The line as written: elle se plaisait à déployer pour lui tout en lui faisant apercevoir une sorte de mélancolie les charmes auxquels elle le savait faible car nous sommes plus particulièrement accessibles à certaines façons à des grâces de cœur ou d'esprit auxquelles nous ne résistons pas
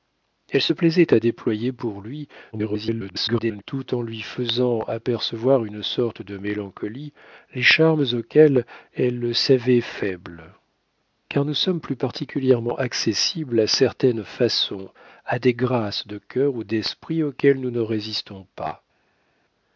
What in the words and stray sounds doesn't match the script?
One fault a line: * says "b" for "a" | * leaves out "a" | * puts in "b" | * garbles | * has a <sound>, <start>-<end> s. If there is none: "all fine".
* garbles